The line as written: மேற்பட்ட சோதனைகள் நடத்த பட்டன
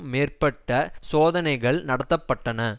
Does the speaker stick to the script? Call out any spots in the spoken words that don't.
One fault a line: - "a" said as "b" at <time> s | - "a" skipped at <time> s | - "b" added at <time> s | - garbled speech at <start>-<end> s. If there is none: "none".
none